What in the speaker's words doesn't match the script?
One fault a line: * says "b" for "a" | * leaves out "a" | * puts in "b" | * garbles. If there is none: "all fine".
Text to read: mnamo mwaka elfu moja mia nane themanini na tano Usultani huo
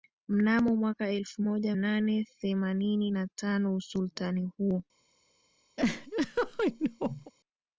* leaves out "mia"